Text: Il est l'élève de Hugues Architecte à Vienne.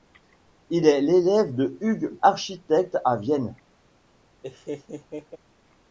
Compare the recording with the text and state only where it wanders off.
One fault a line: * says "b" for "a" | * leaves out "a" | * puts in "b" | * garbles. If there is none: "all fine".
all fine